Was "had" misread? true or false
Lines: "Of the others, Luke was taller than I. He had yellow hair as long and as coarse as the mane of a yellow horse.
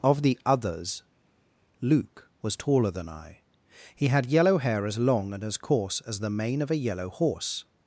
false